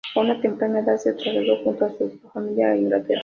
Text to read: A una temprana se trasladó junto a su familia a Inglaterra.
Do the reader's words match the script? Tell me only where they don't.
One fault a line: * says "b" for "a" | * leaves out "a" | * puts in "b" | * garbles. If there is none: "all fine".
* puts in "edad"